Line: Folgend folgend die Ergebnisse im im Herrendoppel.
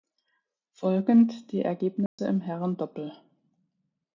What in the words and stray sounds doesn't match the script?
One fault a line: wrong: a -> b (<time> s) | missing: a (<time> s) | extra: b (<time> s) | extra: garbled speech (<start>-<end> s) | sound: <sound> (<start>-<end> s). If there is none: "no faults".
missing: folgend (1.5 s)
sound: dropout (2.1-2.2 s)
missing: im (2.4 s)